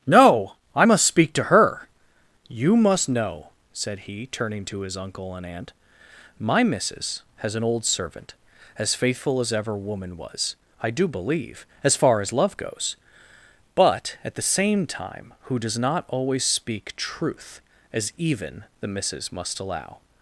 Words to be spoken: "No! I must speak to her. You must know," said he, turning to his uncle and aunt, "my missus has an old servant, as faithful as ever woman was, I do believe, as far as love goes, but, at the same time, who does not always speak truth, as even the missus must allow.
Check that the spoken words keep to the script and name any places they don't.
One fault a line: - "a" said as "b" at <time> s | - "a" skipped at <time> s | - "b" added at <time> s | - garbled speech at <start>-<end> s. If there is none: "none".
none